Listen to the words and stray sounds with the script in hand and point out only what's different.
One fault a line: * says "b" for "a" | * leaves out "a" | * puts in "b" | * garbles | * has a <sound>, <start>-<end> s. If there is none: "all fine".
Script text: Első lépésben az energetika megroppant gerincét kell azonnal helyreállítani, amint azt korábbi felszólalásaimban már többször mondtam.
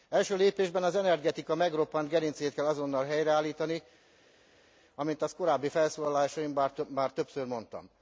all fine